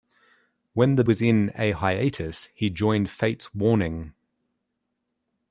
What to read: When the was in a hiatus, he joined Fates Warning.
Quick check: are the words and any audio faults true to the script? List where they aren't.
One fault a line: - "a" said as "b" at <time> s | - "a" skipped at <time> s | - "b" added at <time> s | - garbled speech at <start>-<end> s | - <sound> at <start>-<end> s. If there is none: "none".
none